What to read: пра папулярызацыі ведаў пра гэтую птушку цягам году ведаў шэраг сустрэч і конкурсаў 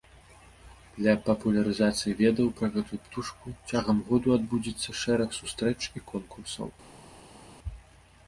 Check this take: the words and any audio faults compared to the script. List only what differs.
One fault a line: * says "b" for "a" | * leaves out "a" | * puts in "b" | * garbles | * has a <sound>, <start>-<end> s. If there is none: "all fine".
* says "для" for "пра"
* says "адбудзецца" for "ведаў"